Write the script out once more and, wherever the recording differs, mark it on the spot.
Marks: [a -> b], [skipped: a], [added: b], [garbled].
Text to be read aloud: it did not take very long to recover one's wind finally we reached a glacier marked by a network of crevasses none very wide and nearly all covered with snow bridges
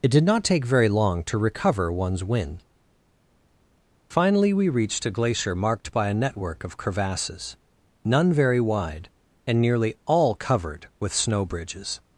it did not take very long to recover one's wind finally we reached a glacier marked by a network of crevasses none very wide and nearly all covered with snow bridges